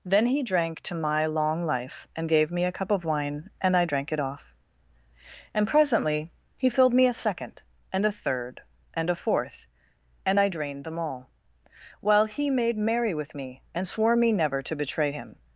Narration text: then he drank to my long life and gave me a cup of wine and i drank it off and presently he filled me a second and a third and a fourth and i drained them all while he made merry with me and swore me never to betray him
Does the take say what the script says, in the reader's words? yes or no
yes